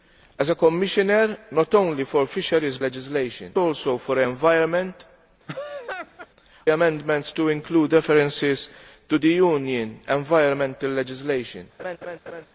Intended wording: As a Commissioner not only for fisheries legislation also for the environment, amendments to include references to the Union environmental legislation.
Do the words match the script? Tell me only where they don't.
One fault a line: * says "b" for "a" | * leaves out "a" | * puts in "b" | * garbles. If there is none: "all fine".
all fine